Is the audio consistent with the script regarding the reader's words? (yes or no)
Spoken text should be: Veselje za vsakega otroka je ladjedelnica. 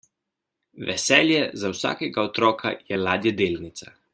yes